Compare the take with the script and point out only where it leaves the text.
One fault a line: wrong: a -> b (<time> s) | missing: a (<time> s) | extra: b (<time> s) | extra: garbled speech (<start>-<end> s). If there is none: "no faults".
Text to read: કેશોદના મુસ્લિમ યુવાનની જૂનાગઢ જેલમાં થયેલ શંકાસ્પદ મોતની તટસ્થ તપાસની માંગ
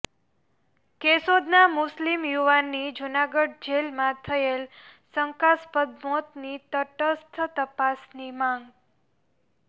no faults